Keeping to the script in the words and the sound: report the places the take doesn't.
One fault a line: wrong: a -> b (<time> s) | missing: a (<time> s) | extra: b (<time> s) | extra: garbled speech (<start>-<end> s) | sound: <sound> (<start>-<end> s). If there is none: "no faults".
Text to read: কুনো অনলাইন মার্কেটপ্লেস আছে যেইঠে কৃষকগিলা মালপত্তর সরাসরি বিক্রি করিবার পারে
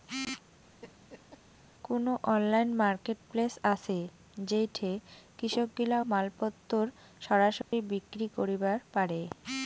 sound: laugh (0.8-1.4 s)
sound: dropout (7.6-7.7 s)